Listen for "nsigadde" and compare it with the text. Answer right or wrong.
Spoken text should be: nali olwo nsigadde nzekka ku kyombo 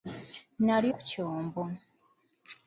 wrong